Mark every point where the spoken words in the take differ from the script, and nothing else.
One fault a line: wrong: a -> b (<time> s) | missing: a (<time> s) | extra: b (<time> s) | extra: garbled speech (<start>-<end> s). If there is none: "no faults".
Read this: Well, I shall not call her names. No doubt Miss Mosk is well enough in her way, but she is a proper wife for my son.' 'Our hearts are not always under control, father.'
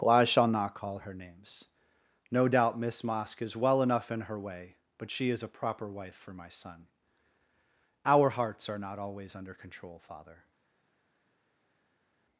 no faults